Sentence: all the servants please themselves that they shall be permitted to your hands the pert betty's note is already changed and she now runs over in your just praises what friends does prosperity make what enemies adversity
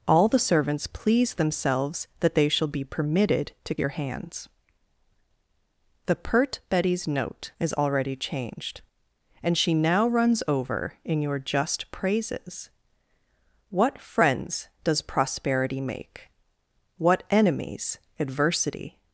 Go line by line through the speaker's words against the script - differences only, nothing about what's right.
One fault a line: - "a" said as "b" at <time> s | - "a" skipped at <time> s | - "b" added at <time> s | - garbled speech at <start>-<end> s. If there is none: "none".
none